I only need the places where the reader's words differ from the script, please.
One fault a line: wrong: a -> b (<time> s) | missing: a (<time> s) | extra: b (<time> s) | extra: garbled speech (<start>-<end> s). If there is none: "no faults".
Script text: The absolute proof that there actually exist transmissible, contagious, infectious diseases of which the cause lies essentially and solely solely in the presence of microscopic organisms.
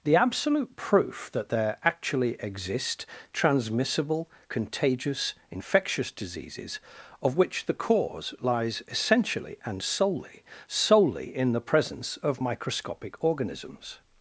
no faults